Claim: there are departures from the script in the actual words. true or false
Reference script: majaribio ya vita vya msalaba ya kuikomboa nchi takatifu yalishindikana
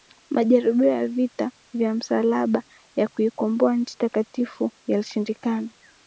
false